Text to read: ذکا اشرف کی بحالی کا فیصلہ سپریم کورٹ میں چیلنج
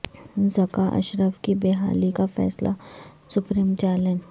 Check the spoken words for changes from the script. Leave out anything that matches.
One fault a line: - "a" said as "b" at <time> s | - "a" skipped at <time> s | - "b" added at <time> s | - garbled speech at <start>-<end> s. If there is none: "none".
- "کورٹ میں" skipped at 3.7 s